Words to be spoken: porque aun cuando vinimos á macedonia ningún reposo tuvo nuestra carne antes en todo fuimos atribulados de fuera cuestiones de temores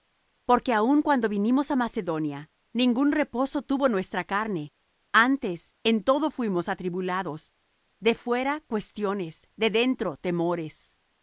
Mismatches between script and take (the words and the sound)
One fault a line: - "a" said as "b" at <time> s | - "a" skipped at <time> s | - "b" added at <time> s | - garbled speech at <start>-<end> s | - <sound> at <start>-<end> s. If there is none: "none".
- "dentro" added at 9.8 s